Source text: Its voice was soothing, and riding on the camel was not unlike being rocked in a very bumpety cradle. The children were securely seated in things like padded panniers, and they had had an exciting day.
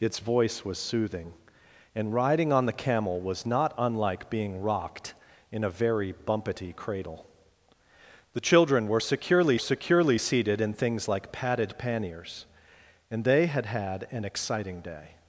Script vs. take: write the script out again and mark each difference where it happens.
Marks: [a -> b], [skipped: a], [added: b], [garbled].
Its voice was soothing, and riding on the camel was not unlike being rocked in a very bumpety cradle. The children were securely [added: securely] seated in things like padded panniers, and they had had an exciting day.